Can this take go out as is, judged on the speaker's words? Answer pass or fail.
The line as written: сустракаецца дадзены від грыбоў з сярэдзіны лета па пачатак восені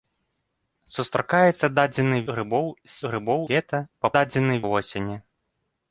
fail